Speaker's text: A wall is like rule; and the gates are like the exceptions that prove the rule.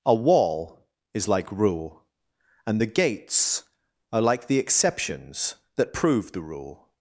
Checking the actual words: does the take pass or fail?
pass